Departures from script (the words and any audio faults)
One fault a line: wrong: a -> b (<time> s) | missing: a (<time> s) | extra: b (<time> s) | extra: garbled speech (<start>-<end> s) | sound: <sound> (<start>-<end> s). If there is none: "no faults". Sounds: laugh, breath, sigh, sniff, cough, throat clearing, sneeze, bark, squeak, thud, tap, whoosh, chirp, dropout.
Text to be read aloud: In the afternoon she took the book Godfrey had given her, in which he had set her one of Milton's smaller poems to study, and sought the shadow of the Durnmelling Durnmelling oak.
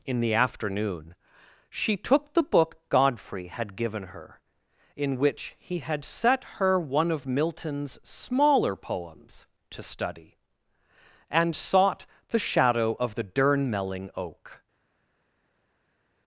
missing: Durnmelling (14.1 s)